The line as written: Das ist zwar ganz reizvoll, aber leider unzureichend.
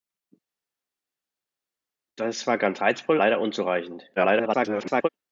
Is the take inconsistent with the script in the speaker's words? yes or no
yes